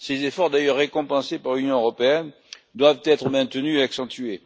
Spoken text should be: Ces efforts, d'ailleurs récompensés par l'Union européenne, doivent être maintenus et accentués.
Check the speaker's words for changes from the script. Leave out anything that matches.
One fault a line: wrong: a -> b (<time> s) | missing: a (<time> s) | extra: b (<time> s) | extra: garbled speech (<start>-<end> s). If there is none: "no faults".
no faults